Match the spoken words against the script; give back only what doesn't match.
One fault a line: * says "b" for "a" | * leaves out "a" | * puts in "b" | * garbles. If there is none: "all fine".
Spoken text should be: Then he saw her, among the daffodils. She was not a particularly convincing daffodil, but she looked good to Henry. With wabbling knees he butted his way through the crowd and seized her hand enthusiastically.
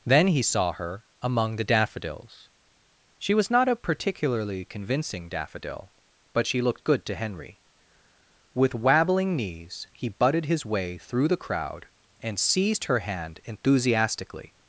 all fine